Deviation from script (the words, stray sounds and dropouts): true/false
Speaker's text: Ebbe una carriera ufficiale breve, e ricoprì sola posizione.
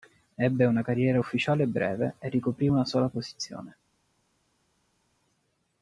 true